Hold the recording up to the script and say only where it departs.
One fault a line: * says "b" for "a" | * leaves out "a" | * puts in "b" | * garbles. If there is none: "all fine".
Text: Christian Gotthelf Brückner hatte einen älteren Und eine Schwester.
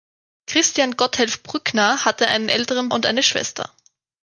all fine